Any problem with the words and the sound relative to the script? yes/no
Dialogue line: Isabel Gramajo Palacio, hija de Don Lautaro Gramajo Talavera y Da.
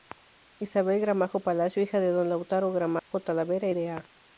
yes